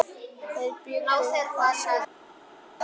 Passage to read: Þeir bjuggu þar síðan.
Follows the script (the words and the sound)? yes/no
yes